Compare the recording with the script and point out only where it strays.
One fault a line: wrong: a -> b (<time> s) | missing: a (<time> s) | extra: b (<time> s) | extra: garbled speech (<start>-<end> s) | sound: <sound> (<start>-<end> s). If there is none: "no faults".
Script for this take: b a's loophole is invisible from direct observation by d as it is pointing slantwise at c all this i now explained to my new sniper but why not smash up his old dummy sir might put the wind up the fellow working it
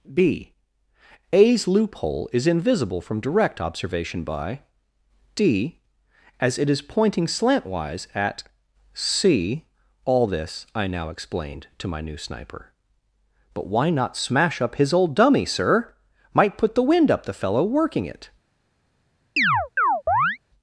sound: chirp (19.4-20.4 s)